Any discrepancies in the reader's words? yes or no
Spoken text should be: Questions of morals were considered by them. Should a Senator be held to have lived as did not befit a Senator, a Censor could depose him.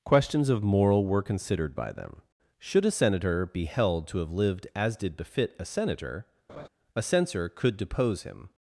yes